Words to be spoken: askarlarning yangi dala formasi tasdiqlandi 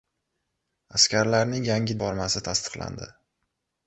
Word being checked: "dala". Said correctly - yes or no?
no